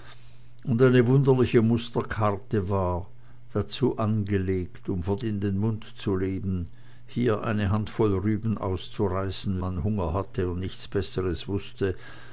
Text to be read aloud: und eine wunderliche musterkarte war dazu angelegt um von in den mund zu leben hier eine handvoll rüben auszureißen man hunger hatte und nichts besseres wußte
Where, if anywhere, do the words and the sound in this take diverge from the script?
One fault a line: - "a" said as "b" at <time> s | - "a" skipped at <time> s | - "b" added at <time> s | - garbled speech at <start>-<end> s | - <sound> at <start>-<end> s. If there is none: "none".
none